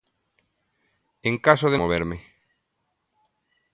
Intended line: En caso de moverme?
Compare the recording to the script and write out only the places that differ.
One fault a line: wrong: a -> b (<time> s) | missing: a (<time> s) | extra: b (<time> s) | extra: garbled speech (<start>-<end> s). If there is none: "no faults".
no faults